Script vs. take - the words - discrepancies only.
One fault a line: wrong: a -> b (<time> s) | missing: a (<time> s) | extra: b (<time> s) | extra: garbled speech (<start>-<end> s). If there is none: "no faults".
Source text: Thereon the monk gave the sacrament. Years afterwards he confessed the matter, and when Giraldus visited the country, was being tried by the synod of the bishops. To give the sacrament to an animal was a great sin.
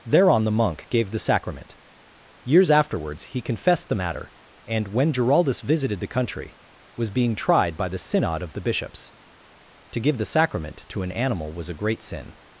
no faults